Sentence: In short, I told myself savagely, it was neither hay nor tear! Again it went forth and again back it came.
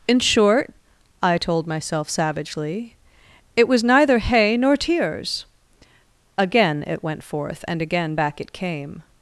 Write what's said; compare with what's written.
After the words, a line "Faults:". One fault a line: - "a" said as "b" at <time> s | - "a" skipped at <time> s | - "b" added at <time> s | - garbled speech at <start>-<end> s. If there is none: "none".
In short, I told myself savagely, it was neither hay nor tears! Again it went forth and again back it came.
Faults:
- "tear" said as "tears" at 4.8 s